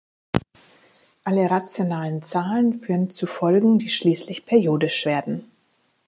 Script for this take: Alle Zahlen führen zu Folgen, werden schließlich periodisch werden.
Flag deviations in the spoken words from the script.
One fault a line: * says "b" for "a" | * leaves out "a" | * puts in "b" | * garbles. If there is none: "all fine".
* puts in "rationalen"
* says "die" for "werden"